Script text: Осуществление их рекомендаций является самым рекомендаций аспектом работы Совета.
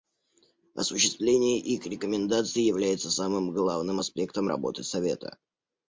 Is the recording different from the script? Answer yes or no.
yes